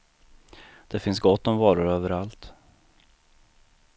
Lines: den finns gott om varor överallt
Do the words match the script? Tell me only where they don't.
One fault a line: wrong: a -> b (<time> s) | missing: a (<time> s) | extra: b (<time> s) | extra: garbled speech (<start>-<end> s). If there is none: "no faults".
wrong: den -> det (0.9 s)